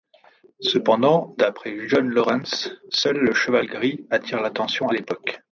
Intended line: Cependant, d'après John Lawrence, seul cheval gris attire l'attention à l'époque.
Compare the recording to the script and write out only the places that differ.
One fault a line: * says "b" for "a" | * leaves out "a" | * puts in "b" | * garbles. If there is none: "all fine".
* puts in "le"